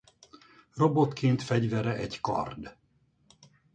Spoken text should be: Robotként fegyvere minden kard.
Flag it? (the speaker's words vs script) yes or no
yes